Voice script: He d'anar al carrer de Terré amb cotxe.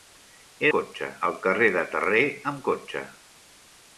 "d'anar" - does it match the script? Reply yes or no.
no